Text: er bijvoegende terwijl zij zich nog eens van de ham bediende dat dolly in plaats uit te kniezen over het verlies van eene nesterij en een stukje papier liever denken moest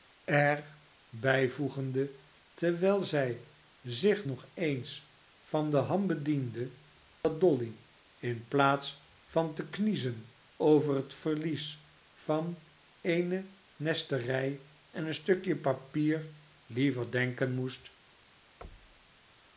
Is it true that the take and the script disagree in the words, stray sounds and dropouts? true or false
true